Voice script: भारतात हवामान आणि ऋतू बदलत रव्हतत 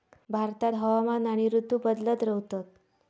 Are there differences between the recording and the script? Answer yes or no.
no